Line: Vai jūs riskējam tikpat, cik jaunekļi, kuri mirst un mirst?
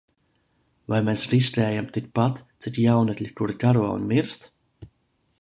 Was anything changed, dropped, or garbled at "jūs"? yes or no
yes